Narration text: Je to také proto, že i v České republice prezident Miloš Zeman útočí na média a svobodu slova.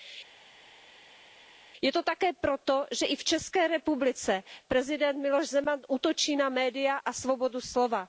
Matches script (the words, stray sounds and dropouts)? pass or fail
pass